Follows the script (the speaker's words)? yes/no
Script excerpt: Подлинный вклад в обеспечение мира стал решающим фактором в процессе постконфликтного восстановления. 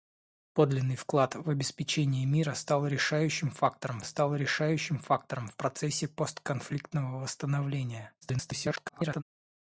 no